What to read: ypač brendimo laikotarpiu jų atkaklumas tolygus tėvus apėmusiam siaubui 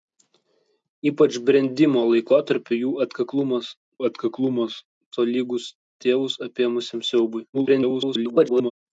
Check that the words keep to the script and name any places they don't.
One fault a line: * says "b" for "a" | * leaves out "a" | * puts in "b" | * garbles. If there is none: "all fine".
* puts in "atkaklumas"
* garbles